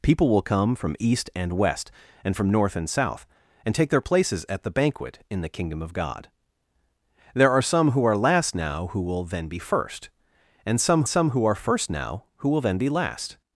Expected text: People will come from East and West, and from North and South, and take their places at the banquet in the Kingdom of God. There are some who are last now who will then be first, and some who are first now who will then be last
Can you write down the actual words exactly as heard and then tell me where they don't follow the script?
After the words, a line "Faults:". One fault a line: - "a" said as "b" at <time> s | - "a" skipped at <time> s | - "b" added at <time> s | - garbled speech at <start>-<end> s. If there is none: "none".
People will come from East and West, and from North and South, and take their places at the banquet in the Kingdom of God. There are some who are last now who will then be first, and some some who are first now who will then be last
Faults:
- "some" added at 11.1 s